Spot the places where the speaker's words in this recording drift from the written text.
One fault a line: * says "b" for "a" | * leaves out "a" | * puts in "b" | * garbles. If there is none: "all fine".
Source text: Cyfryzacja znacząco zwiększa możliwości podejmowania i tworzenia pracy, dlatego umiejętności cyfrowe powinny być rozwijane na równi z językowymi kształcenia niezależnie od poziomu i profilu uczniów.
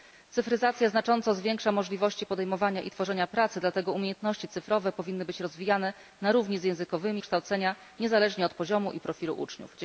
all fine